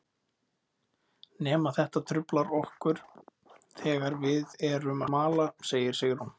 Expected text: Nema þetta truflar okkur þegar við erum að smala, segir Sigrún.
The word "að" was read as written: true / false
false